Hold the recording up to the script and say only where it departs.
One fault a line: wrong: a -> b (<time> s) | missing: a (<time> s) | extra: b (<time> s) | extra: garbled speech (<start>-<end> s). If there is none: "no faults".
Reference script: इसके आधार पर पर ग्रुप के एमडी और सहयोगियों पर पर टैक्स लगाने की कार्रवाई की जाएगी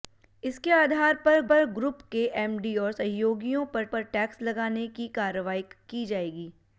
no faults